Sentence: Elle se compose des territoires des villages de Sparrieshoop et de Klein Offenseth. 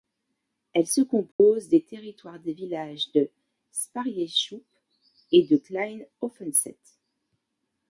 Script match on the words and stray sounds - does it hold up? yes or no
no